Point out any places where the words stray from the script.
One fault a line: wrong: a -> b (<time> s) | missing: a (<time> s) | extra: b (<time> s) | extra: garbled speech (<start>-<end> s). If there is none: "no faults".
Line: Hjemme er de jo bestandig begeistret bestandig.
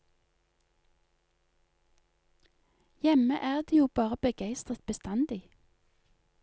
wrong: bestandig -> bare (3.9 s)